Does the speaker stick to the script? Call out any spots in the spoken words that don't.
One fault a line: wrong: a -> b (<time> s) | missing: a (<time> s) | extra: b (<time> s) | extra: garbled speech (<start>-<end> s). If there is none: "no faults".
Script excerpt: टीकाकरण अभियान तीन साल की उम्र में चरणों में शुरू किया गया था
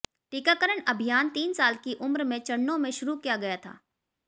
no faults